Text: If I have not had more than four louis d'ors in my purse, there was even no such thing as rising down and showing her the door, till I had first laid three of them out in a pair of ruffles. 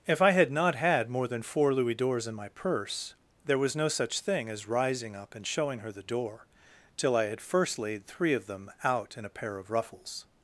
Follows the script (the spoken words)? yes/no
no